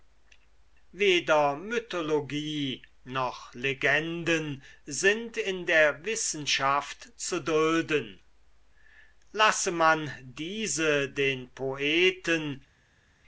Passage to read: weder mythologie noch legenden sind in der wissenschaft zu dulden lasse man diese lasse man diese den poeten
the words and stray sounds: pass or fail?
fail